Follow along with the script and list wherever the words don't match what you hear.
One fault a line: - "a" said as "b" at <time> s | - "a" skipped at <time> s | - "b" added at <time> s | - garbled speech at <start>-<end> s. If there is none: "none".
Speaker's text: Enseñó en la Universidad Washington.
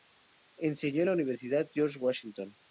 - "George" added at 1.7 s